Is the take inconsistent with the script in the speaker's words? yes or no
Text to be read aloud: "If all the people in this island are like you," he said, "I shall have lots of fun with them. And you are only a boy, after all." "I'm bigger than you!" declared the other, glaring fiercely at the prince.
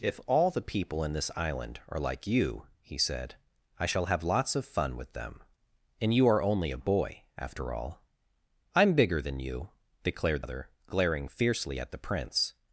yes